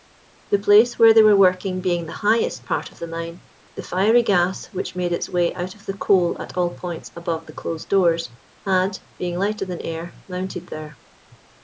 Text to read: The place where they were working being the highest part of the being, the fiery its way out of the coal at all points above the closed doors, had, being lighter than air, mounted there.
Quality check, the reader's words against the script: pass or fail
fail